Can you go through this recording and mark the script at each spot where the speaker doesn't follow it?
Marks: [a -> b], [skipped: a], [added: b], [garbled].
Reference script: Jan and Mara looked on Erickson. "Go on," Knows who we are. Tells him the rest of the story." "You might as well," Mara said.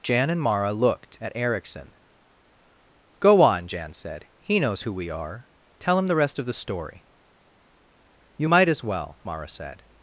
Jan and Mara looked [on -> at] Erickson. "Go on," [added: Jan said He] Knows who we are. [Tells -> Tell] him the rest of the story." "You might as well," Mara said.